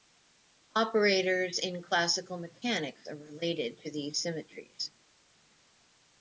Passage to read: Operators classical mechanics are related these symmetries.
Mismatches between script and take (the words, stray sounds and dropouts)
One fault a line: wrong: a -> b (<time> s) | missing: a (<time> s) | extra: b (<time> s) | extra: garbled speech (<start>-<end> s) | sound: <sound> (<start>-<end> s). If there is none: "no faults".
extra: in (1.6 s)
extra: to (3.8 s)